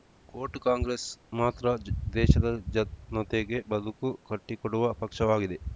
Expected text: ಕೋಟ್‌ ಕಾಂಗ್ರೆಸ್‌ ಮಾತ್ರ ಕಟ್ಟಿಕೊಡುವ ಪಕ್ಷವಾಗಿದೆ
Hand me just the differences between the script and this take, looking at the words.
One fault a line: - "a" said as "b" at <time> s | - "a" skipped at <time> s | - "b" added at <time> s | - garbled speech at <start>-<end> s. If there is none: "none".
- "ದೇಶದ ಜನತೆಗೆ ಬದುಕು" added at 2.2 s